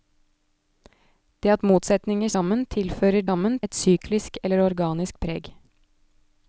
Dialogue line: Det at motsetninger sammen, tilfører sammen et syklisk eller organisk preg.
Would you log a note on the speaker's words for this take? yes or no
no